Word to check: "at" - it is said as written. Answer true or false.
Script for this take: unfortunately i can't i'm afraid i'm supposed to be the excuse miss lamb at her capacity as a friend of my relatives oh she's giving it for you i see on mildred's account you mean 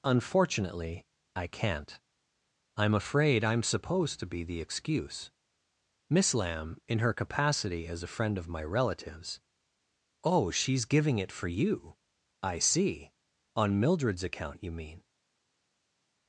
false